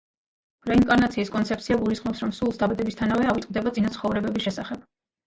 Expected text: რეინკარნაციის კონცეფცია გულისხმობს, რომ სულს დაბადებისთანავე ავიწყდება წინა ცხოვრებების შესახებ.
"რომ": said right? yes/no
yes